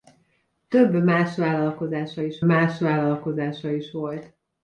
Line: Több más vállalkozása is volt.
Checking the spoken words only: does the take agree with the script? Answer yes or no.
no